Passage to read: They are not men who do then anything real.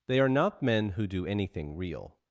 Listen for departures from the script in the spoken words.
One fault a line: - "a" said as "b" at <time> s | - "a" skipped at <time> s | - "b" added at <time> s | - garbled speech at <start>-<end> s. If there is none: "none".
- "then" skipped at 1.2 s